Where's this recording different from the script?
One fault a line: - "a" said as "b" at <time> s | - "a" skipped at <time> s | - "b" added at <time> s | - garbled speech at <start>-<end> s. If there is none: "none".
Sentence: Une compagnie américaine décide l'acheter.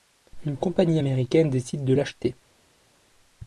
- "de" added at 1.8 s